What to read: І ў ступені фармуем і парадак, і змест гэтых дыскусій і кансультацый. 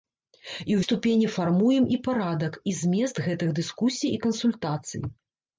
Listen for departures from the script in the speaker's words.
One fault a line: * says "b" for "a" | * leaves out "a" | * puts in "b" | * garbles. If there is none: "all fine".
all fine